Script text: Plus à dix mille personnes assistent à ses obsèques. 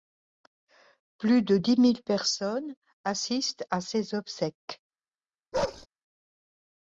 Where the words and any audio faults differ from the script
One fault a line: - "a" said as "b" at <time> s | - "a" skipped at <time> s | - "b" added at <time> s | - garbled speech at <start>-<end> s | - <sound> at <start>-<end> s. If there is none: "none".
- "à" said as "de" at 1.4 s
- bark at 5.5-5.9 s